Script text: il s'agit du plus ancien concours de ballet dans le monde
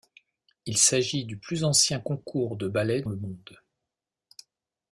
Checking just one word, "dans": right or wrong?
wrong